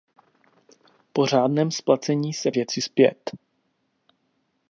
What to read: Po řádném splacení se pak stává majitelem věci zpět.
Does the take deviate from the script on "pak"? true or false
true